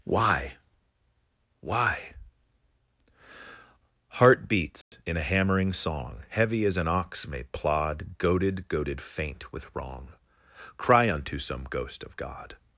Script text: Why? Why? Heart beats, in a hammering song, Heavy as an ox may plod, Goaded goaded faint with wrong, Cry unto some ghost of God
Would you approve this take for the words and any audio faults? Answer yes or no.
no